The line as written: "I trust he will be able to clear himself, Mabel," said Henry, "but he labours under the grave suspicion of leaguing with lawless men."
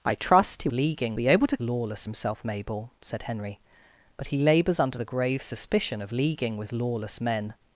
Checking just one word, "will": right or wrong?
wrong